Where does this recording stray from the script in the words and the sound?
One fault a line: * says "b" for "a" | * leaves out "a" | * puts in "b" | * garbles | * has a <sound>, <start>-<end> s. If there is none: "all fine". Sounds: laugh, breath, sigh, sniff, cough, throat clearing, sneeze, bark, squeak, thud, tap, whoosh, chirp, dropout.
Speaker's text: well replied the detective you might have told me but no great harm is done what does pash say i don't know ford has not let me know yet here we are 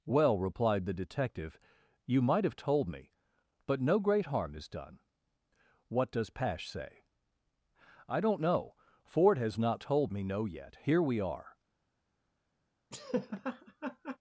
* says "told" for "let"
* has a laugh, 12.9-14.2 s